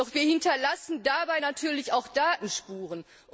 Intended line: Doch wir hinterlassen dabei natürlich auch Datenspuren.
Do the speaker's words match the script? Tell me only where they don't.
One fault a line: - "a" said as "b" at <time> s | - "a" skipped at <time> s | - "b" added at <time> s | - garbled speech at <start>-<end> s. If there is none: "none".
none